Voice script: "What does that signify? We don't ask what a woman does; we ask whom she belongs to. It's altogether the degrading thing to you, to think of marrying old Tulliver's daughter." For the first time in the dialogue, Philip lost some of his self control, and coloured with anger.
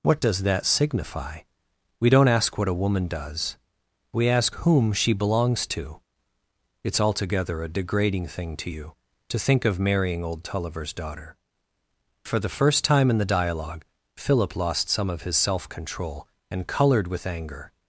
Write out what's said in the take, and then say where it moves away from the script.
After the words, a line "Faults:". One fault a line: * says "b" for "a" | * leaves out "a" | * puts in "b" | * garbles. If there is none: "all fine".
"What does that signify? We don't ask what a woman does; we ask whom she belongs to. It's altogether a degrading thing to you, to think of marrying old Tulliver's daughter." For the first time in the dialogue, Philip lost some of his self control, and coloured with anger.
Faults:
* says "a" for "the"